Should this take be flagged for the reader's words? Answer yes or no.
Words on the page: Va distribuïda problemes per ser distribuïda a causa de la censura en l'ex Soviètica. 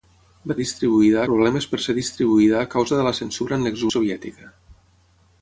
no